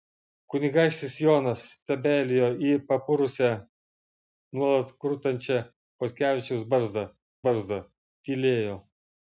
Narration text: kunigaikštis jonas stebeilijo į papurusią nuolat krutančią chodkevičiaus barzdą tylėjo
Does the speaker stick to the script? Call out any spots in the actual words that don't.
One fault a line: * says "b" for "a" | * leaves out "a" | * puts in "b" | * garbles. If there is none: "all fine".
* puts in "barzdą"